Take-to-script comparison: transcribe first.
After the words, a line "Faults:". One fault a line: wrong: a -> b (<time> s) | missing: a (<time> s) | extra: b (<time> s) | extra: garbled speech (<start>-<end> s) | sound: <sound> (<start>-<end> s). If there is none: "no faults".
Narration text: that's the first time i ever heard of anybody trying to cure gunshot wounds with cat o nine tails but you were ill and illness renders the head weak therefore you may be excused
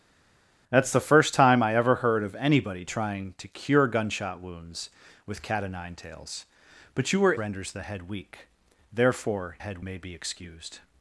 that's the first time i ever heard of anybody trying to cure gunshot wounds with cat o nine tails but you were renders the head weak therefore head may be excused
Faults:
missing: ill and illness (7.4 s)
wrong: you -> head (9.6 s)